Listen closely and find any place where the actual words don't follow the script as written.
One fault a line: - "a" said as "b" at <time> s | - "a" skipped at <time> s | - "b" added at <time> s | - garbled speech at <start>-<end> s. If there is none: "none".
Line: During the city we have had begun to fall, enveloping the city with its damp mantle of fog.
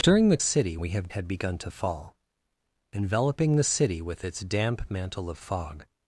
none